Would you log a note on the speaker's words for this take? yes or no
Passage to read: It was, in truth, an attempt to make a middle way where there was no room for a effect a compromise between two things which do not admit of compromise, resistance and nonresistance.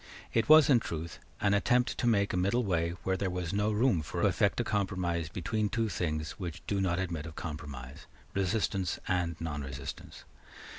no